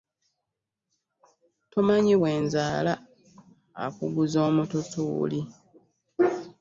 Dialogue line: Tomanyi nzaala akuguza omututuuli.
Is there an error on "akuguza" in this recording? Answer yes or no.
no